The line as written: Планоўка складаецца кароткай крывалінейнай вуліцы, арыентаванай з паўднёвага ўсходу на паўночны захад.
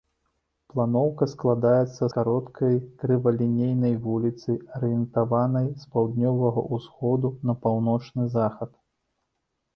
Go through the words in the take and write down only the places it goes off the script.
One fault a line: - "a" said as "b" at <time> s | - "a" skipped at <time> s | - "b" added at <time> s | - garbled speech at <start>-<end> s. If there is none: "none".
none